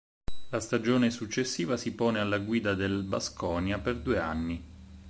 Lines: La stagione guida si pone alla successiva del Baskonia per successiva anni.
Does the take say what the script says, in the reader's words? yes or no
no